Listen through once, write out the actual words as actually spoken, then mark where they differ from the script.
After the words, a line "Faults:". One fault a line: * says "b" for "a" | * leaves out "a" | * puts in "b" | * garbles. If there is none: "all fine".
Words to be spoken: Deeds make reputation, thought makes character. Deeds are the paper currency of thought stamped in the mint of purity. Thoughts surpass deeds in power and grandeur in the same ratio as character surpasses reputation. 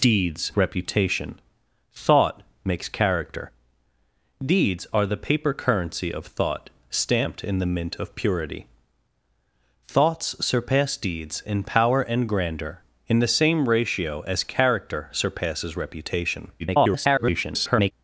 Deeds reputation, thought makes character. Deeds are the paper currency of thought stamped in the mint of purity. Thoughts surpass deeds in power and grandeur in the same ratio as character surpasses reputation. [garbled]
Faults:
* leaves out "make"
* garbles